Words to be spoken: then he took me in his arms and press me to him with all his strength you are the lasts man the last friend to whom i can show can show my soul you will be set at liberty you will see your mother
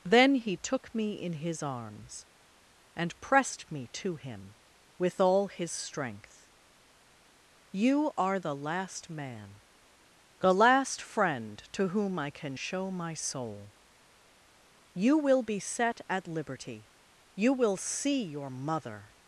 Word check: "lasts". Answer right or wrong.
wrong